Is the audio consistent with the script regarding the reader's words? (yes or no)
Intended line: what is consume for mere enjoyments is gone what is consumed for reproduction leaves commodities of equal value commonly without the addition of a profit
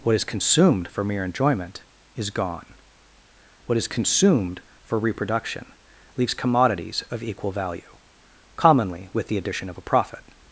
no